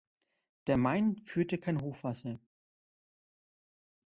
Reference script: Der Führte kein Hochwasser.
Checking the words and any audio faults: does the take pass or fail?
fail